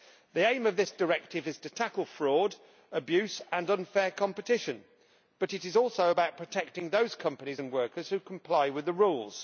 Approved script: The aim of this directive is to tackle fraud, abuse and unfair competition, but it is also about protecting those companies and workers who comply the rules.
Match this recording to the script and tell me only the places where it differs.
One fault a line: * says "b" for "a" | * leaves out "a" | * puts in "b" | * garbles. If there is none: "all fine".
* puts in "with"